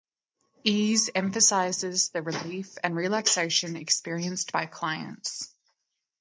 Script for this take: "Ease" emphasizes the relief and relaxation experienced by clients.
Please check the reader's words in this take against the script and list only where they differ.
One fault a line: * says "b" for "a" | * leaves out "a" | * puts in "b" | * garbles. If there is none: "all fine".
all fine